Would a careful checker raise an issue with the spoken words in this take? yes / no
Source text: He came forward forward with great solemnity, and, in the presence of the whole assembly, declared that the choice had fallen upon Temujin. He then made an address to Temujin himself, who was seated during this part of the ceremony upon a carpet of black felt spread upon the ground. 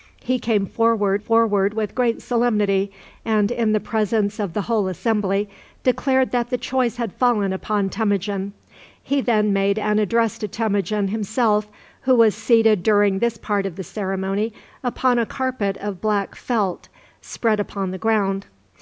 no